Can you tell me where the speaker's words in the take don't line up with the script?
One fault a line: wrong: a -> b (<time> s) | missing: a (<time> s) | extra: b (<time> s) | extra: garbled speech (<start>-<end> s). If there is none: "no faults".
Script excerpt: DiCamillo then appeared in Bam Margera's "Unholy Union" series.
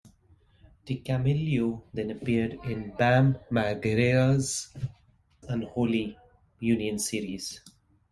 no faults